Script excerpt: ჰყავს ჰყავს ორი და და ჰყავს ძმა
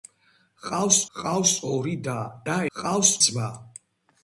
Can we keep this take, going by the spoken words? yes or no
yes